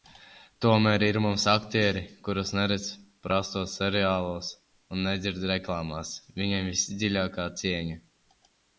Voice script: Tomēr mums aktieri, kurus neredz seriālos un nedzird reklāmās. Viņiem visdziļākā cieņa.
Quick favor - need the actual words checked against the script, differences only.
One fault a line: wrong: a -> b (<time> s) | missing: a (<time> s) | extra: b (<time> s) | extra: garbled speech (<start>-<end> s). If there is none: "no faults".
extra: ir (1.1 s)
extra: prastos (3.3 s)